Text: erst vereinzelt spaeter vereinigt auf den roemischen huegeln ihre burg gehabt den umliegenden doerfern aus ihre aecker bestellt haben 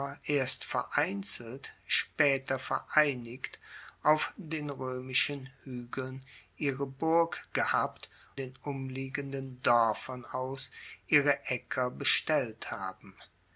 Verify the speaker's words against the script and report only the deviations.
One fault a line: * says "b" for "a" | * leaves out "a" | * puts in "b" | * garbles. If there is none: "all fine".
all fine